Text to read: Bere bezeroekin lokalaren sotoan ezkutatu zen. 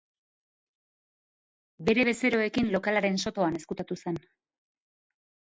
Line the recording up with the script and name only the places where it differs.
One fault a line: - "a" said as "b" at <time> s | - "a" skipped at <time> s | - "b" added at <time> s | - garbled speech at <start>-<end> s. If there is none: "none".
none